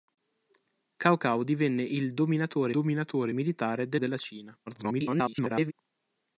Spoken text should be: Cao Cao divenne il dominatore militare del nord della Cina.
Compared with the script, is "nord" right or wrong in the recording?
wrong